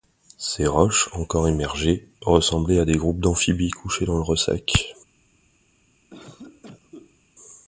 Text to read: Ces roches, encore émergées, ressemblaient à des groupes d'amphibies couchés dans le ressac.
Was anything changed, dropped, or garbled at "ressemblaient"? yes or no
no